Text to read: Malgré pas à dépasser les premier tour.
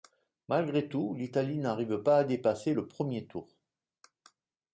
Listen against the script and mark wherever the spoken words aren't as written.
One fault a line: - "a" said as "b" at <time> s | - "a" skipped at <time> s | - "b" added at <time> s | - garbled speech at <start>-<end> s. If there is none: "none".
- "tout l'Italie n'arrive" added at 0.9 s
- "les" said as "le" at 2.7 s